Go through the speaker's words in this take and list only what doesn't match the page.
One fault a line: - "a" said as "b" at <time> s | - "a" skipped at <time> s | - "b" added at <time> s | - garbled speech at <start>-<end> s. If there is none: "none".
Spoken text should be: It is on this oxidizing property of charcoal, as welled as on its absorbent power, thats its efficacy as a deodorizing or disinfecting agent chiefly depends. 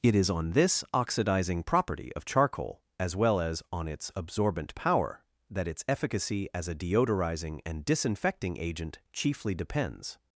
- "welled" said as "well" at 3.1 s
- "thats" said as "that" at 5.5 s
- "or" said as "and" at 7.7 s